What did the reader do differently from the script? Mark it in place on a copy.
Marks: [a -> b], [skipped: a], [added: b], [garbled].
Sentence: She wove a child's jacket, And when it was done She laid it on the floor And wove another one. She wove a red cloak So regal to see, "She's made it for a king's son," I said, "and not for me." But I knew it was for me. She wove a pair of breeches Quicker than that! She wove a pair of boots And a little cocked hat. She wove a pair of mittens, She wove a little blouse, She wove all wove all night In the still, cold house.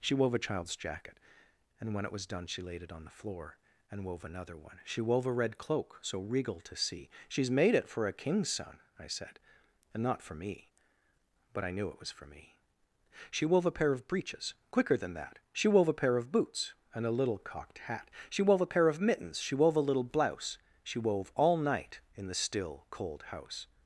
She wove a child's jacket, And when it was done She laid it on the floor And wove another one. She wove a red cloak So regal to see, "She's made it for a king's son," I said, "and not for me." But I knew it was for me. She wove a pair of breeches Quicker than that! She wove a pair of boots And a little cocked hat. She wove a pair of mittens, She wove a little blouse, She wove all [skipped: wove all] night In the still, cold house.